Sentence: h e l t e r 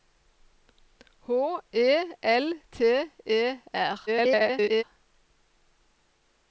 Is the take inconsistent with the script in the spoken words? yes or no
yes